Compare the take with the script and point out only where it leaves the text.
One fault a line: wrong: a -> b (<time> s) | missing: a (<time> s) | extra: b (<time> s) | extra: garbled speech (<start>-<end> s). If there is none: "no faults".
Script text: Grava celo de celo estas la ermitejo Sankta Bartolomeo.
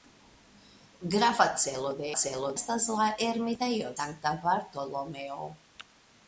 no faults